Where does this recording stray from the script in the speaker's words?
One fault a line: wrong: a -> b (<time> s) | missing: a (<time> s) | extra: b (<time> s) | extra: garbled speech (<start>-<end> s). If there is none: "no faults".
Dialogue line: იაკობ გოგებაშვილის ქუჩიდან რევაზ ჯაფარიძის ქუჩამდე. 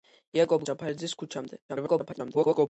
missing: გოგებაშვილის ქუჩიდან რევაზ (0.6 s)
extra: garbled speech (1.7-2.7 s)